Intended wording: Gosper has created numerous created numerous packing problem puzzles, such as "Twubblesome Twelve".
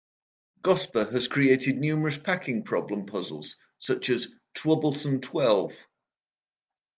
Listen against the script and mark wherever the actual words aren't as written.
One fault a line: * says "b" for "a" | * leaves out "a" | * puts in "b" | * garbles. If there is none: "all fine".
* leaves out "created numerous"